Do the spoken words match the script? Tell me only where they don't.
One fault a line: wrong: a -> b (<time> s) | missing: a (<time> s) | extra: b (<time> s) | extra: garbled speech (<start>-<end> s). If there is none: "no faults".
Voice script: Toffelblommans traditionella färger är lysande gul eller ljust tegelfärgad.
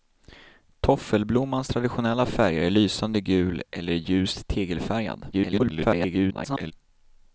extra: garbled speech (5.3-6.7 s)